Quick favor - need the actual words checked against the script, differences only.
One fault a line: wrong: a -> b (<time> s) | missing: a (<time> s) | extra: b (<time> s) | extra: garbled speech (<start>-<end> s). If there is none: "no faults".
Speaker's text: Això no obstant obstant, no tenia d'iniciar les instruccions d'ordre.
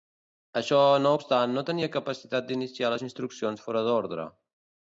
missing: obstant (1.6 s)
extra: capacitat (2.0 s)
extra: fora (3.7 s)